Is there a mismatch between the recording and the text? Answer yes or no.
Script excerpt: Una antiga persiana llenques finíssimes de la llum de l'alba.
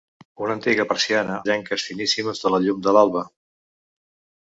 no